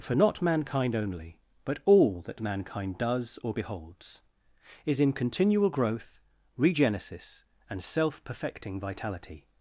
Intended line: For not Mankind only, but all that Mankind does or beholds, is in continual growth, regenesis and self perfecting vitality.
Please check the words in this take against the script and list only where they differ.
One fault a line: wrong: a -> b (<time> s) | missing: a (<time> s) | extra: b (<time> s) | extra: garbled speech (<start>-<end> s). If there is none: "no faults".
no faults